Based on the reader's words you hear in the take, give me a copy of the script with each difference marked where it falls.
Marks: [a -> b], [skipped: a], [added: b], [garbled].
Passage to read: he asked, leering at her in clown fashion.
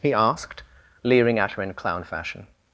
he asked, leering at her in clown fashion.